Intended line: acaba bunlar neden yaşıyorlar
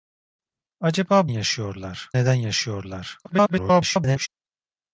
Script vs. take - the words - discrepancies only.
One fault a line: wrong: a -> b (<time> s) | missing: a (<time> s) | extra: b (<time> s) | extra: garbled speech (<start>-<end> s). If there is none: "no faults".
wrong: bunlar -> yaşıyorlar (1.2 s)
extra: garbled speech (3.2-4.3 s)